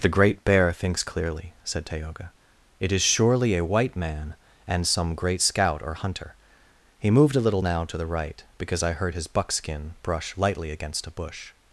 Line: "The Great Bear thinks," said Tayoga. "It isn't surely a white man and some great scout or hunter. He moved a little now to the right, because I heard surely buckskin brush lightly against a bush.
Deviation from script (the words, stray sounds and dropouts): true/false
true